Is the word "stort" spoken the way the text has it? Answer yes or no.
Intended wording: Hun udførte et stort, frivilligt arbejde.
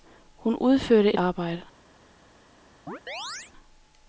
no